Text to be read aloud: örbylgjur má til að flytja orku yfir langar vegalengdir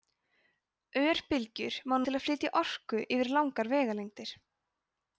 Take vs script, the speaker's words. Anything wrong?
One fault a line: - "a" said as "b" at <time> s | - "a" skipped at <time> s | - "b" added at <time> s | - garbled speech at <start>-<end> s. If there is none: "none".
none